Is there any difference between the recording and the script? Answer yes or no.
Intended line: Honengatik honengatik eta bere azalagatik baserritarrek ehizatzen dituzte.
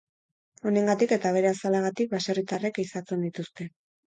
yes